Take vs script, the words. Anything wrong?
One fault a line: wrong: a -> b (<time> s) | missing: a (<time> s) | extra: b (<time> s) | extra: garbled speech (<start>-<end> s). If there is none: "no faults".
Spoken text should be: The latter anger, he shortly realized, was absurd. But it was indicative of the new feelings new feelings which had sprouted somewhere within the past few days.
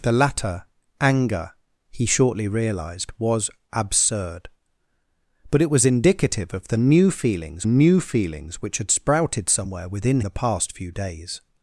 no faults